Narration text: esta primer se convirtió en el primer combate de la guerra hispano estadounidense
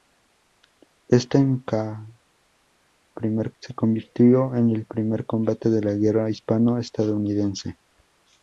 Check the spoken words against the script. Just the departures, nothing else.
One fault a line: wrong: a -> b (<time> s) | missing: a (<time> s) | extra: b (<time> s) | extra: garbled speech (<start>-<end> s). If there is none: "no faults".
no faults